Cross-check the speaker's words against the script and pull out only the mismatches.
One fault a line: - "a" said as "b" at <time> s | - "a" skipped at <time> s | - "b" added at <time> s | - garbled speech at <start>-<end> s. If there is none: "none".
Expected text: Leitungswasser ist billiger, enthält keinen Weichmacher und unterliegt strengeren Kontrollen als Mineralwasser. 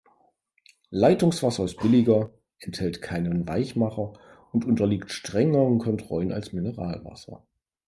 none